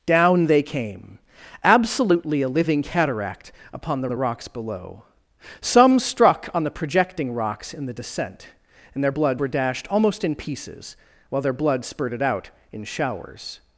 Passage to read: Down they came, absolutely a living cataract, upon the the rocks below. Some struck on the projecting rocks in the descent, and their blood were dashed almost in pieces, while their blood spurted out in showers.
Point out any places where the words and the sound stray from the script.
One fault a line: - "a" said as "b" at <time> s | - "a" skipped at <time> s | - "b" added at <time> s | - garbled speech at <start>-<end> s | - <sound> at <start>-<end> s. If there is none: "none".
none